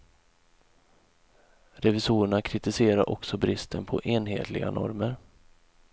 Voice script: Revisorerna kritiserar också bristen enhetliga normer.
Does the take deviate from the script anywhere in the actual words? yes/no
yes